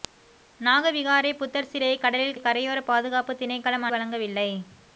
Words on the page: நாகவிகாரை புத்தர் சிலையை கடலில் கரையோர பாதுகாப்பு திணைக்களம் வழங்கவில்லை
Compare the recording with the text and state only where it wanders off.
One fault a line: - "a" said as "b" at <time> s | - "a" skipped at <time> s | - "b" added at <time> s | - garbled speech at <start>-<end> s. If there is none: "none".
none